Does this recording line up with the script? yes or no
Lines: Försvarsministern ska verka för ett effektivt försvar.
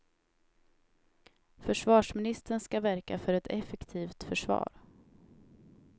yes